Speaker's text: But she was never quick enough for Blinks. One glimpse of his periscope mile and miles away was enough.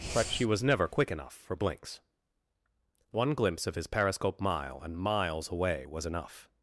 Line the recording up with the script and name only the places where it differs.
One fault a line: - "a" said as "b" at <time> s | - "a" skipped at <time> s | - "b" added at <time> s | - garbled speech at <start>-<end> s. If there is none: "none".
none